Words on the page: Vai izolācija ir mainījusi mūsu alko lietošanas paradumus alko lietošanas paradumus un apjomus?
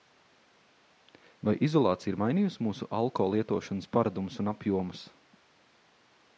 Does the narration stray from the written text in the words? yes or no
yes